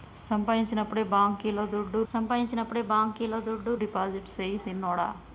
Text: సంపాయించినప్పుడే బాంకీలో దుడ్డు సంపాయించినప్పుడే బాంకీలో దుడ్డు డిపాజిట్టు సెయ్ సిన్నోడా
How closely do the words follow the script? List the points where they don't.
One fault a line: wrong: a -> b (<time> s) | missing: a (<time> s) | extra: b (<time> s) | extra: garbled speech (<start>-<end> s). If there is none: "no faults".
no faults